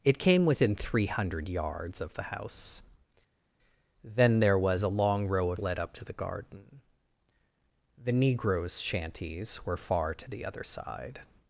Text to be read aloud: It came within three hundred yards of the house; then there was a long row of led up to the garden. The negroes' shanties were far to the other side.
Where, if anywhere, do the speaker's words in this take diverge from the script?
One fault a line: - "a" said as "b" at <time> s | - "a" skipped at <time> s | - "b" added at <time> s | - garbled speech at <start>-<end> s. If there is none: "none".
none